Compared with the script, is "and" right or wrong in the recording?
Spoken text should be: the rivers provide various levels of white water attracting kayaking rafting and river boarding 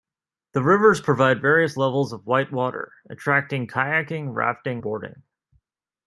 wrong